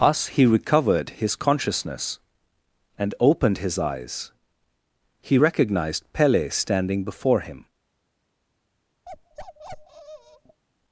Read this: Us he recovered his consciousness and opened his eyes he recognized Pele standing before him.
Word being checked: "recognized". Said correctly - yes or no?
yes